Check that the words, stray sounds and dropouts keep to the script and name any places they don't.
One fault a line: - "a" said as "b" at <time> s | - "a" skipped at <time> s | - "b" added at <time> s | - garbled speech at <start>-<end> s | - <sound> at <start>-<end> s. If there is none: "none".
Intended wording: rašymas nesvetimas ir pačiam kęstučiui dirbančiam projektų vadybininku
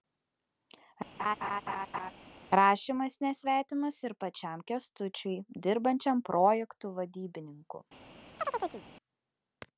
- laugh at 1.2-2.1 s
- chirp at 8.4-8.8 s